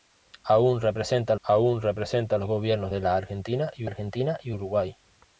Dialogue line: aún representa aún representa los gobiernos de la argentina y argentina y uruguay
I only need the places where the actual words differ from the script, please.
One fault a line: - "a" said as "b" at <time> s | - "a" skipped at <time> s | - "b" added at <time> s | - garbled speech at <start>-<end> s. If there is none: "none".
none